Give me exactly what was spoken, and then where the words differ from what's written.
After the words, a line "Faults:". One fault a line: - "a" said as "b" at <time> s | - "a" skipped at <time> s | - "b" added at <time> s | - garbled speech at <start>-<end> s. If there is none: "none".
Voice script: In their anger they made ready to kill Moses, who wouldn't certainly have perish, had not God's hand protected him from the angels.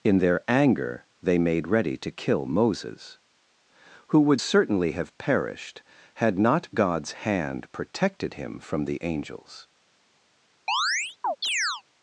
In their anger they made ready to kill Moses, who would certainly have perished, had not God's hand protected him from the angels.
Faults:
- "wouldn't" said as "would" at 4.2 s
- "perish" said as "perished" at 5.2 s